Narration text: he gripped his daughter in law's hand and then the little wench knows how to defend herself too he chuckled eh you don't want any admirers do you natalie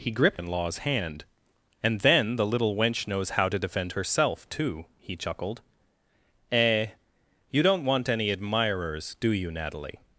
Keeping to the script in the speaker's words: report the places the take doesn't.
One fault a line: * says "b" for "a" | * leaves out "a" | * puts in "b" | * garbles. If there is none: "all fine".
* leaves out "his daughter"